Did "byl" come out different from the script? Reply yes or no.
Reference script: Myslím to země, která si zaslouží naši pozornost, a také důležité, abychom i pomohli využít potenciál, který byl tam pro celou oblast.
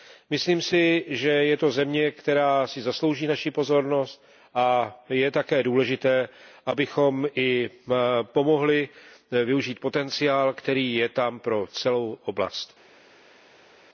yes